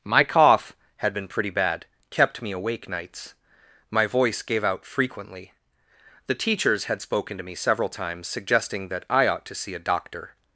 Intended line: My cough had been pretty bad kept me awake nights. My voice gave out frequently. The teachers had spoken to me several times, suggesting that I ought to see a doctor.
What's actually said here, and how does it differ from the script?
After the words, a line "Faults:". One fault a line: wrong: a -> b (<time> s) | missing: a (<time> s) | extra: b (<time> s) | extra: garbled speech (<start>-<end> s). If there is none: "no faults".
My cough had been pretty bad kept me awake nights. My voice gave out frequently. The teachers had spoken to me several times, suggesting that I ought to see a doctor.
Faults:
no faults